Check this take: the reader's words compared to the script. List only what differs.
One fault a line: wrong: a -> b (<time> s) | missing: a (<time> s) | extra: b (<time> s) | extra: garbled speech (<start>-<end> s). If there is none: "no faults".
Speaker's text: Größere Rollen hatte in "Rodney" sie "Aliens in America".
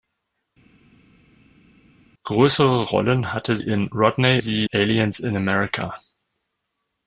no faults